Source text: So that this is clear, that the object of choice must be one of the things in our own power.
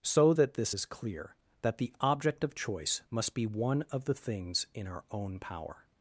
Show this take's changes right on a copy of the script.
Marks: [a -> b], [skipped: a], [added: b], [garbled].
So that this is clear, that the object of choice must be one of the things in our own power.